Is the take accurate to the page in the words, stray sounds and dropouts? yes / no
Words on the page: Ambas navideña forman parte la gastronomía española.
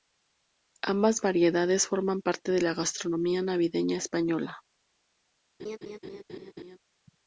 no